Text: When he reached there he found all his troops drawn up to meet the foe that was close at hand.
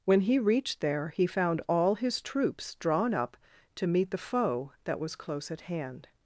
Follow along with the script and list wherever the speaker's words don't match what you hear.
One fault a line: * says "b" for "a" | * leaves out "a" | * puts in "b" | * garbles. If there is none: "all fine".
all fine